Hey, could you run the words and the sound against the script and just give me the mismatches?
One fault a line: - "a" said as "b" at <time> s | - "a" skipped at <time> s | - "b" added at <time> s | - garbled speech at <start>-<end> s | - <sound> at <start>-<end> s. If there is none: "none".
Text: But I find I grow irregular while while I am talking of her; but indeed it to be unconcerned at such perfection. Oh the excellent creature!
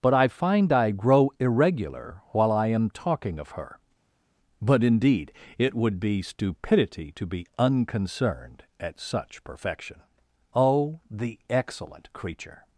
- "while" skipped at 2.5 s
- "would be stupidity" added at 5.7 s